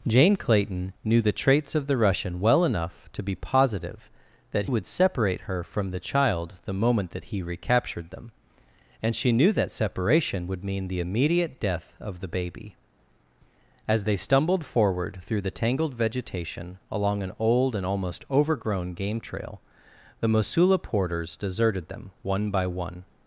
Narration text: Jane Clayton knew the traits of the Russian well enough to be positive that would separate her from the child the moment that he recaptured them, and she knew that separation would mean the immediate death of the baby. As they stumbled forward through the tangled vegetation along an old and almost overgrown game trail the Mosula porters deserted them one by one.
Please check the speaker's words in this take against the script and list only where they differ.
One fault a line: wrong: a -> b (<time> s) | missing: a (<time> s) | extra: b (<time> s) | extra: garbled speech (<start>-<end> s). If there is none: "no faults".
no faults